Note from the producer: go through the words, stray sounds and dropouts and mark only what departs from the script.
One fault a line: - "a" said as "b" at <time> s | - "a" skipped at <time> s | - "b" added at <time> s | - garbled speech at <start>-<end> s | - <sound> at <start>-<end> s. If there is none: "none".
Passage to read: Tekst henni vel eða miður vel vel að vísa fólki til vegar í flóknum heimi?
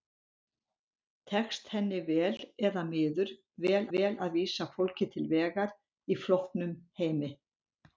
none